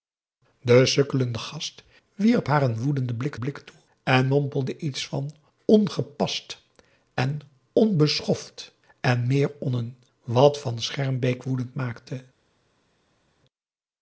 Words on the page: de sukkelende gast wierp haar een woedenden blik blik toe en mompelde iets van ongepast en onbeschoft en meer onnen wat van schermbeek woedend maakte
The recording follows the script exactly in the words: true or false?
true